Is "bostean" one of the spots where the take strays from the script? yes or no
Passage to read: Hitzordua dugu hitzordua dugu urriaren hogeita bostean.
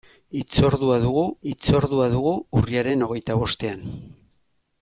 no